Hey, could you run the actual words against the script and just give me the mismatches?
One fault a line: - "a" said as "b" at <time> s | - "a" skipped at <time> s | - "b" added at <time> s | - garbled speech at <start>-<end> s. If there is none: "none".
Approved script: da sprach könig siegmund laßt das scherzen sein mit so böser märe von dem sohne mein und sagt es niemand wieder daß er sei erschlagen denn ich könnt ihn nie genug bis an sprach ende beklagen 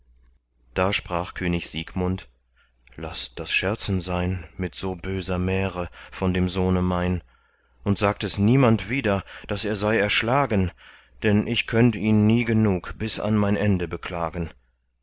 - "sprach" said as "mein" at 13.4 s